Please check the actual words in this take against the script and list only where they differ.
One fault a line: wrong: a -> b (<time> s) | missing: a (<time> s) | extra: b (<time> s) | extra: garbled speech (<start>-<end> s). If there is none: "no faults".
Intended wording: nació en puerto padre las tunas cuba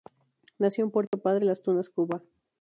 no faults